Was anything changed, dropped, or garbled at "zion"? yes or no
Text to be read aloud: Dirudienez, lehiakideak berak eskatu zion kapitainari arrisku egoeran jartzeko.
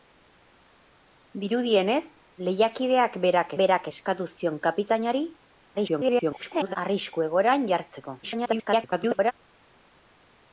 no